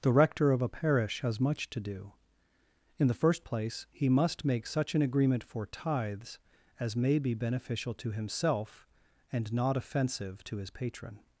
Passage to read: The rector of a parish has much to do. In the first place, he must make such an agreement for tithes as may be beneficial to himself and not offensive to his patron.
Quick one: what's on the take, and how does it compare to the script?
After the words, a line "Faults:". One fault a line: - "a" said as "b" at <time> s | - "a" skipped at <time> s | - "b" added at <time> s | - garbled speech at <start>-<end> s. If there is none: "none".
The rector of a parish has much to do. In the first place, he must make such an agreement for tithes as may be beneficial to himself and not offensive to his patron.
Faults:
none